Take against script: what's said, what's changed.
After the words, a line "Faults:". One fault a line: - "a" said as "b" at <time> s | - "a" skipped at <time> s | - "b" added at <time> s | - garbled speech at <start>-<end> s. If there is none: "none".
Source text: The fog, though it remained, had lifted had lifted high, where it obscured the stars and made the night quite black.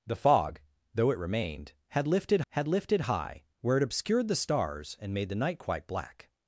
The fog, though it remained, had lifted had lifted high, where it obscured the stars and made the night quite black.
Faults:
none